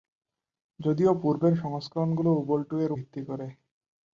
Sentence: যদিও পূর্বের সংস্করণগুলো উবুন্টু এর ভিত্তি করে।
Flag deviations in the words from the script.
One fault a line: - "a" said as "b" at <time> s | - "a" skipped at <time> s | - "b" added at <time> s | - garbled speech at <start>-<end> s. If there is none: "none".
none